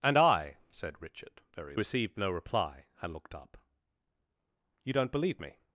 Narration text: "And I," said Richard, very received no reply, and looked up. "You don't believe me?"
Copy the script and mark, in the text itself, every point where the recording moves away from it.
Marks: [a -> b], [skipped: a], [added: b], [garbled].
"And I," said Richard, very received no reply, and looked up. "You don't believe me?"